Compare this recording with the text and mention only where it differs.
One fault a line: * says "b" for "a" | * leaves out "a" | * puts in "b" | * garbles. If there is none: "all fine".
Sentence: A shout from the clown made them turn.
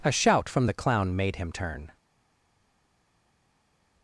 * says "him" for "them"